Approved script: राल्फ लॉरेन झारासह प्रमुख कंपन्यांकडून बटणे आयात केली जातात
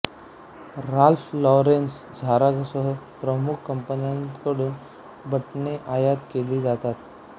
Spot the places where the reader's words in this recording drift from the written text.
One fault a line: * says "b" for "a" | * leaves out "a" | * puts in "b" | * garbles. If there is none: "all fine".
all fine